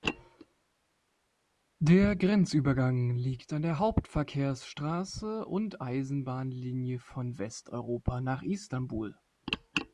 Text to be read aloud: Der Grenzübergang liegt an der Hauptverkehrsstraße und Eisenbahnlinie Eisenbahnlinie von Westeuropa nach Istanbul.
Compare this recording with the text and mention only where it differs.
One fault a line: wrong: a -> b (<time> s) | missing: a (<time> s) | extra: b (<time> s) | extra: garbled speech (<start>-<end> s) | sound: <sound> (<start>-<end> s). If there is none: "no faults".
missing: Eisenbahnlinie (7.0 s)